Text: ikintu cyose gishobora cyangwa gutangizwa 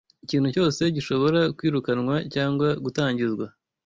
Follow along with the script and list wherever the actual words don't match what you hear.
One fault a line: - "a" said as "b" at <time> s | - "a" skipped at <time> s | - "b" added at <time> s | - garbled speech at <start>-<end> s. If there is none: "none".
- "kwirukanwa" added at 1.6 s